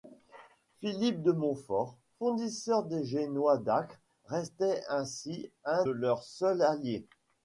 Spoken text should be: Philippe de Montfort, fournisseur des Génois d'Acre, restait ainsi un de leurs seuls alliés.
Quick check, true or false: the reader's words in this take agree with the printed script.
false